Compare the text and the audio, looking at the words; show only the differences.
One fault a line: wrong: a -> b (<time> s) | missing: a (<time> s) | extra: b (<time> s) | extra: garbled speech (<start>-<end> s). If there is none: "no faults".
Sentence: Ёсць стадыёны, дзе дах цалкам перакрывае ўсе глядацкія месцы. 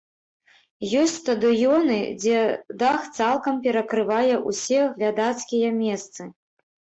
no faults